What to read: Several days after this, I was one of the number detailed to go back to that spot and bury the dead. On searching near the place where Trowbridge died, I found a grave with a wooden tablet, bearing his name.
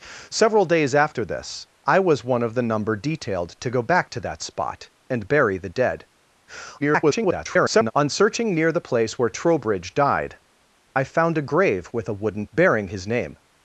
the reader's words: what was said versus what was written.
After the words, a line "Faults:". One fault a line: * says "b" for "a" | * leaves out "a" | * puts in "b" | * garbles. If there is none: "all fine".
Several days after this, I was one of the number detailed to go back to that spot and bury the dead. [garbled] On searching near the place where Trowbridge died, I found a grave with a wooden bearing his name.
Faults:
* garbles
* leaves out "tablet"